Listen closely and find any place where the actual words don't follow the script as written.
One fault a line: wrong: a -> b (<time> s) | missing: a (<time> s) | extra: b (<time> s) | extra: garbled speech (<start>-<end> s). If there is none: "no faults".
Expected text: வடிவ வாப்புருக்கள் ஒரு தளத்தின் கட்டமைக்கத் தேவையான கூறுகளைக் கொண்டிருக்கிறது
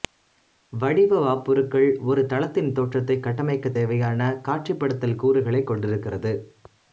extra: தோற்றத்தை (2.7 s)
extra: காட்சிப்படுத்தல் (4.5 s)